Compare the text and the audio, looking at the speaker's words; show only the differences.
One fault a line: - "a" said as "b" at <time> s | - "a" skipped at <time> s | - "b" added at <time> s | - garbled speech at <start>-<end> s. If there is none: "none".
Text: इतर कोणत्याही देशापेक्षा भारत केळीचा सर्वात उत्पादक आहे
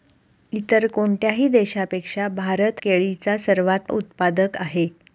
none